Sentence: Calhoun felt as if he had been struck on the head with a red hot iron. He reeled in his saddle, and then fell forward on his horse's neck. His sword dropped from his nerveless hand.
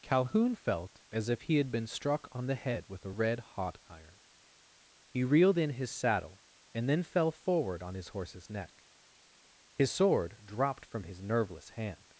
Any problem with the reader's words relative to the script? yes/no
no